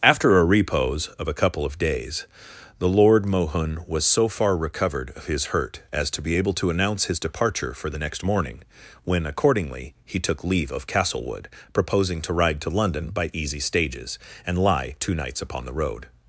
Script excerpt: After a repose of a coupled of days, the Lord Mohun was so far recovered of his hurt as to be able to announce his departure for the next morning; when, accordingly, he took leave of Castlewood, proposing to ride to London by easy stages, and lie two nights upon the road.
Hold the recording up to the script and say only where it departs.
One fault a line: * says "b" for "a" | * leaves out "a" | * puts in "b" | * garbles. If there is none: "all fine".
* says "couple" for "coupled"